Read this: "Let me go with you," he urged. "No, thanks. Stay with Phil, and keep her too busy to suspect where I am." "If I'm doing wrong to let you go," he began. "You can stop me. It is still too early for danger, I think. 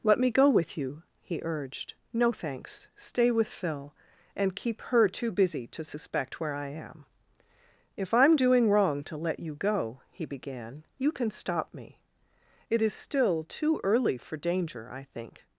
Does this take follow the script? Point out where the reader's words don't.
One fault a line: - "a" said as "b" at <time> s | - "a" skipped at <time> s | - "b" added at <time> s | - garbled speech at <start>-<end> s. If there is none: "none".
none